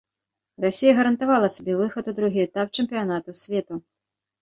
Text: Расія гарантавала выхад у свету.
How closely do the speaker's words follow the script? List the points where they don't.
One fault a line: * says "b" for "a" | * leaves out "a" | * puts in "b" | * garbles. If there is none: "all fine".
* puts in "сабе"
* puts in "другі этап чэмпіянату"